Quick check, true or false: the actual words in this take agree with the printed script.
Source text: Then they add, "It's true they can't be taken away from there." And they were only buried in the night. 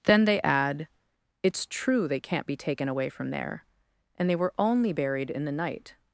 true